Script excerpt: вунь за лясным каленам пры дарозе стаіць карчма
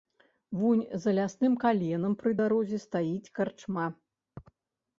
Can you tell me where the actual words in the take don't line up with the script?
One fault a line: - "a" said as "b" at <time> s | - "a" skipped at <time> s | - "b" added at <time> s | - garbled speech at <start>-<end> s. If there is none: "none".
none